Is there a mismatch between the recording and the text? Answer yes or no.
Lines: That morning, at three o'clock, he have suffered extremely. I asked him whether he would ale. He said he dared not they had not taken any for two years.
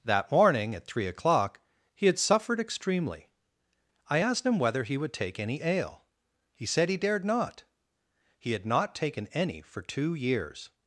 yes